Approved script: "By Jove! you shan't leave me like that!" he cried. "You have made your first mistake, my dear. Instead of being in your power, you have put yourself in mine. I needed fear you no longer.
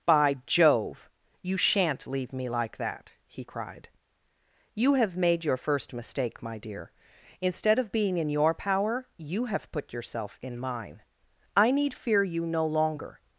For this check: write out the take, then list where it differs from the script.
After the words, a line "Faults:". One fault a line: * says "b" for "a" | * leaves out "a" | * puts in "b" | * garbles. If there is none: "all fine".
"By Jove! you shan't leave me like that!" he cried. "You have made your first mistake, my dear. Instead of being in your power, you have put yourself in mine. I need fear you no longer.
Faults:
* says "need" for "needed"